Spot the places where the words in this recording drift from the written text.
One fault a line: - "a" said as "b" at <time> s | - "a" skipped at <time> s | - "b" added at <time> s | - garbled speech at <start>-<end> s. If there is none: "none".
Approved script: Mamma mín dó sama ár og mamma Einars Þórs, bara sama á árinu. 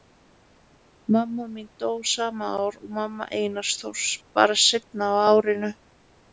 - "sama" said as "seinna" at 4.7 s